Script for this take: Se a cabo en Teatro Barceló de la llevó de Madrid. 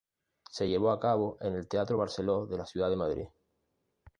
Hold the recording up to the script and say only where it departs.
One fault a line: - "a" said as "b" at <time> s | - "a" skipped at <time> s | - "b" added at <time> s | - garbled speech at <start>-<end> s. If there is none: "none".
- "llevó" added at 0.6 s
- "el" added at 1.5 s
- "llevó" said as "ciudad" at 2.7 s